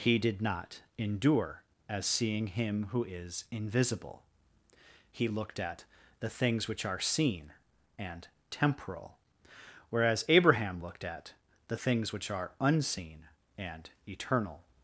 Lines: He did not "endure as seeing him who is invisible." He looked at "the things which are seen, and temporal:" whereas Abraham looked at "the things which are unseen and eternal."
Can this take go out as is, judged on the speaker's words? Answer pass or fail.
pass